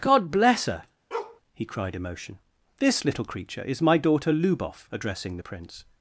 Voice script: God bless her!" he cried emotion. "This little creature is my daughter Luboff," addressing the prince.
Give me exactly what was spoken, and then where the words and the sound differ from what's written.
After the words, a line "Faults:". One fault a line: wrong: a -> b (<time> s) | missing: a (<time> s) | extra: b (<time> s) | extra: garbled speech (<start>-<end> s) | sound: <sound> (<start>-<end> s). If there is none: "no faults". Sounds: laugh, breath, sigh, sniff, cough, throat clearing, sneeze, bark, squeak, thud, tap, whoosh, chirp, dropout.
God bless her!" he cried emotion. "This little creature is my daughter Luboff," addressing the prince.
Faults:
sound: bark (1.1-1.4 s)